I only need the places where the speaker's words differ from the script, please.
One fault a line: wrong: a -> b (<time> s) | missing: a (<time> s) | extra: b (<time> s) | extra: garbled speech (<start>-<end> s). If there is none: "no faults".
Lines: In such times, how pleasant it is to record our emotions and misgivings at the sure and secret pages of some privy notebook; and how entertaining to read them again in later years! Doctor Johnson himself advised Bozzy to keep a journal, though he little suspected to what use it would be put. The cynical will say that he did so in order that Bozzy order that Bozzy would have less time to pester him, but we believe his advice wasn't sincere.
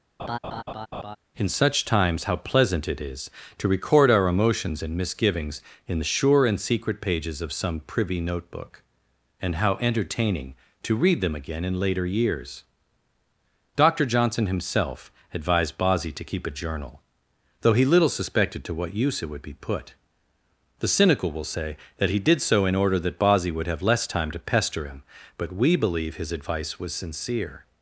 wrong: at -> in (5.9 s)
missing: order that Bozzy (23.5 s)
wrong: wasn't -> was (26.8 s)